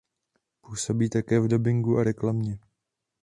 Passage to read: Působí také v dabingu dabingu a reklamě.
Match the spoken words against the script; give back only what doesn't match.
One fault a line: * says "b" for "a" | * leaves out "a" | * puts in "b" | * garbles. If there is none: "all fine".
* leaves out "dabingu"